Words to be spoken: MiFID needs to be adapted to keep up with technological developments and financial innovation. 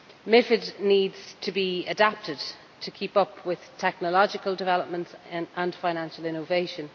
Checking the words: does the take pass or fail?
pass